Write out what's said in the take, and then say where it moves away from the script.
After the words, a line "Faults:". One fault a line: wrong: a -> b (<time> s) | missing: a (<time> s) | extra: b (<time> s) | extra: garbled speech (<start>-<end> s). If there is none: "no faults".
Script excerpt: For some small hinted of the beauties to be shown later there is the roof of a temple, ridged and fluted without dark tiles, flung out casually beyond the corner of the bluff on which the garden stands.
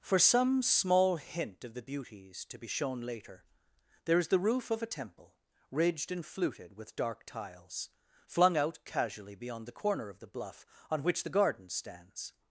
For some small hint of the beauties to be shown later there is the roof of a temple, ridged and fluted with dark tiles, flung out casually beyond the corner of the bluff on which the garden stands.
Faults:
wrong: hinted -> hint (1.2 s)
wrong: without -> with (6.8 s)